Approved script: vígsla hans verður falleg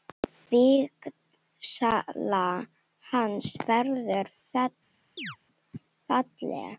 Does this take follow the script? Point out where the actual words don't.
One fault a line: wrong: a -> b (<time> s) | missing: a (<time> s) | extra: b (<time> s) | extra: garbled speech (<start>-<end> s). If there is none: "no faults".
no faults